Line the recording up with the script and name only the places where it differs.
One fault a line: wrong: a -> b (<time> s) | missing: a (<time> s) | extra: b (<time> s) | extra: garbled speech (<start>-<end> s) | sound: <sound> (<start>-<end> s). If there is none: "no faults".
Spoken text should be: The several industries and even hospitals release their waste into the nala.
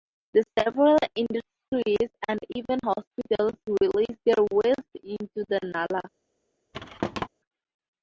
sound: thud (6.7-7.3 s)